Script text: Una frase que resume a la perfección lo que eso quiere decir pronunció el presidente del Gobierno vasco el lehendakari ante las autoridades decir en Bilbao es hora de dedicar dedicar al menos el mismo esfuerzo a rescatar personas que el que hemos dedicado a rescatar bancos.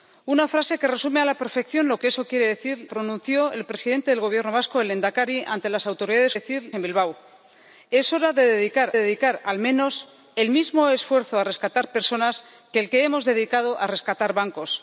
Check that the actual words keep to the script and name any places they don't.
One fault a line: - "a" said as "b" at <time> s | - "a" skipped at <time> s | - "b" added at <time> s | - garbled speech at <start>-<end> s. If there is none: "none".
none